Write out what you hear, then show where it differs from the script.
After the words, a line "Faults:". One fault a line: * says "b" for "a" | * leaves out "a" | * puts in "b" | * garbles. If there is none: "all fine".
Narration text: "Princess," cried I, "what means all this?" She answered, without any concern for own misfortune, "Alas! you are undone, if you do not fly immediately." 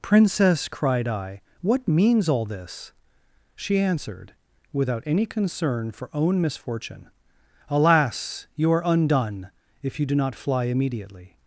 "Princess," cried I, "what means all this?" She answered, without any concern for own misfortune, "Alas! you are undone, if you do not fly immediately."
Faults:
all fine